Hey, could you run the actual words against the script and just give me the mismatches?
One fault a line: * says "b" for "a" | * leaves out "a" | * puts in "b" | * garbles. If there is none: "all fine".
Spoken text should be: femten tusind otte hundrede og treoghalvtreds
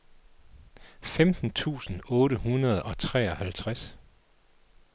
all fine